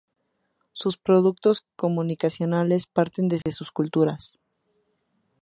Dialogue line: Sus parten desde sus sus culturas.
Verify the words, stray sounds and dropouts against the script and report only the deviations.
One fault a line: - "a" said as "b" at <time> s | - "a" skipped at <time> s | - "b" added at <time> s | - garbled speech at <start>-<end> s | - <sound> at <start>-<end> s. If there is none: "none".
- "productos comunicacionales" added at 1.0 s
- dropout at 3.4-3.5 s
- "sus" skipped at 3.7 s